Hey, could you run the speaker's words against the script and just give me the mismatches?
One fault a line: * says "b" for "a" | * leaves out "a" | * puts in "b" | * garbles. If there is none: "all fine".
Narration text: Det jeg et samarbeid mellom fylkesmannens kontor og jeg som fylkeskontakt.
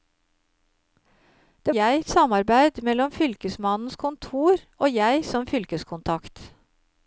all fine